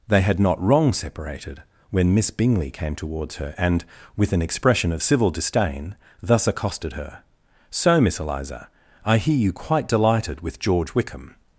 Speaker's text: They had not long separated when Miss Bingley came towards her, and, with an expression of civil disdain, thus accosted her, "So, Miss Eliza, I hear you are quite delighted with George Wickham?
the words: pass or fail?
fail